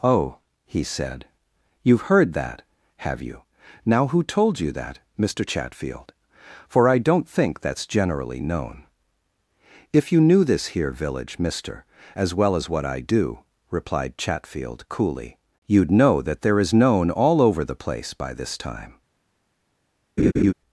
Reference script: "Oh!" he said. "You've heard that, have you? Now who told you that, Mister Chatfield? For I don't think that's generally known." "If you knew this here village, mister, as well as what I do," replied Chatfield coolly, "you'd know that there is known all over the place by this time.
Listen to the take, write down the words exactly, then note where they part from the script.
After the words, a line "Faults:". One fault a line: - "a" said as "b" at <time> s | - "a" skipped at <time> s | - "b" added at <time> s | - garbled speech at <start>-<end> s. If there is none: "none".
"Oh!" he said. "You've heard that, have you? Now who told you that, Mister Chatfield? For I don't think that's generally known." "If you knew this here village, mister, as well as what I do," replied Chatfield coolly, "you'd know that there is known all over the place by this time.
Faults:
none